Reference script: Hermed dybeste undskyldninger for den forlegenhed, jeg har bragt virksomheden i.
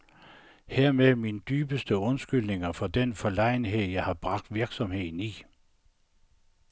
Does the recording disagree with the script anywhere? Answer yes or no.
yes